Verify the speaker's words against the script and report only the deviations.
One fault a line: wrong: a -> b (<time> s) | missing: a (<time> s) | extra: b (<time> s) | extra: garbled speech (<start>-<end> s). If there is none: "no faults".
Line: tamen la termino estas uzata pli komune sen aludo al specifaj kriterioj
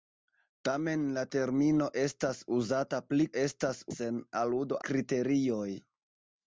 wrong: komune -> estas (3.4 s)
missing: al specifaj (4.8 s)